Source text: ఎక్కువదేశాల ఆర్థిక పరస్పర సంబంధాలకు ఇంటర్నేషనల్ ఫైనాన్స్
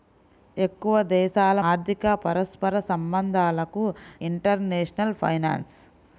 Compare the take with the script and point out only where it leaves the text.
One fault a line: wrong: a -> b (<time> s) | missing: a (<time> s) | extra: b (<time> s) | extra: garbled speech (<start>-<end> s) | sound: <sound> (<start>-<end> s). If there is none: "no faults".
no faults